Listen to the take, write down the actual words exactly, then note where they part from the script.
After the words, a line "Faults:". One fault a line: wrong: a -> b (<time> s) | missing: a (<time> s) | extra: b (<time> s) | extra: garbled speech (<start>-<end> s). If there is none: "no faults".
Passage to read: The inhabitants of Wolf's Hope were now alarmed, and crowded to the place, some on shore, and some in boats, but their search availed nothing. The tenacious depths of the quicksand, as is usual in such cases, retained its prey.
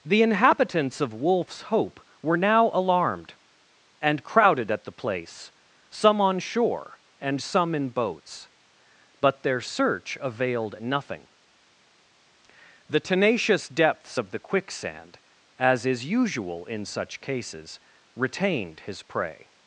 The inhabitants of Wolf's Hope were now alarmed, and crowded at the place, some on shore, and some in boats, but their search availed nothing. The tenacious depths of the quicksand, as is usual in such cases, retained his prey.
Faults:
wrong: to -> at (4.7 s)
wrong: its -> his (18.8 s)